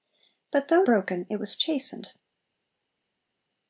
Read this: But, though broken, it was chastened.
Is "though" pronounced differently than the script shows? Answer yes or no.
no